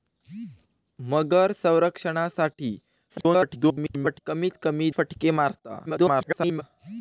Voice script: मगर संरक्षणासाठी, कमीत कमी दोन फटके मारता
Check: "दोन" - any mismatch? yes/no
yes